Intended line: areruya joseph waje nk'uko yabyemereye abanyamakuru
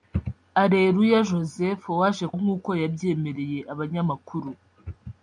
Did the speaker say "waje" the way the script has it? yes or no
yes